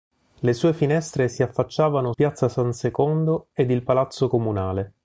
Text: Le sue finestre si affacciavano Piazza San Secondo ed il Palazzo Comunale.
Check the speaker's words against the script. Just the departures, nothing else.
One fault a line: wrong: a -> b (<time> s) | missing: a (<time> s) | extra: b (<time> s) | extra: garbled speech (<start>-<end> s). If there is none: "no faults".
no faults